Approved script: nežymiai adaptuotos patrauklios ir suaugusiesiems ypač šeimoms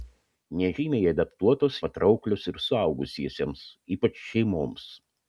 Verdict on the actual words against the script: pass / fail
pass